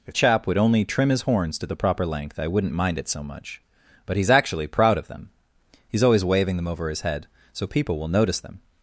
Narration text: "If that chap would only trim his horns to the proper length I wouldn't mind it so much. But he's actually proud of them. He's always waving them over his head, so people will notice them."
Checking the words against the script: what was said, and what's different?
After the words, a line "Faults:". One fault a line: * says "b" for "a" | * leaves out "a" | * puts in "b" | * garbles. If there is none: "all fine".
"If chap would only trim his horns to the proper length I wouldn't mind it so much. But he's actually proud of them. He's always waving them over his head, so people will notice them."
Faults:
* leaves out "that"